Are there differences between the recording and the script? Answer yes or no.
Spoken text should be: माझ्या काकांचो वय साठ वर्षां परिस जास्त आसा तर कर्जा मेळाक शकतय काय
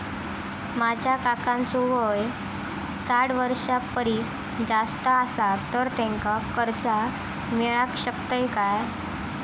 yes